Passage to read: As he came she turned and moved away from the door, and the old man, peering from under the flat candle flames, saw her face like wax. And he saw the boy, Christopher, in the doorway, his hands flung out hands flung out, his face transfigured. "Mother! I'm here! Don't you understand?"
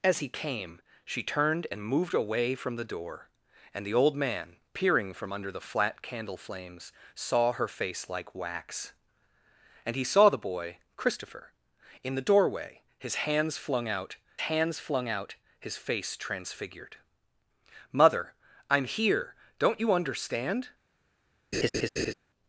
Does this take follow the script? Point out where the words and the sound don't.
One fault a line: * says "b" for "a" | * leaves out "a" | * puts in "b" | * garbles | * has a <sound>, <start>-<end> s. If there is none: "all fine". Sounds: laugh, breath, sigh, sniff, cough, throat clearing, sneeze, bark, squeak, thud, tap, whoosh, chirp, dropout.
* has a laugh, 21.5-22.1 s